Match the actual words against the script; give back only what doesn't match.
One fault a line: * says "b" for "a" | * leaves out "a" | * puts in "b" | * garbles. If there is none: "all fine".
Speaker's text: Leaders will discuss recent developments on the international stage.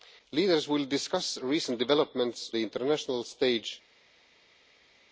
* leaves out "on"